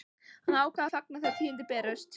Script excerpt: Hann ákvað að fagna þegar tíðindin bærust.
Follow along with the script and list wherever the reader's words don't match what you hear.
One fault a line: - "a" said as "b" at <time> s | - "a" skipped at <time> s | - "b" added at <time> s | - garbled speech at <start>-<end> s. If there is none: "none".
none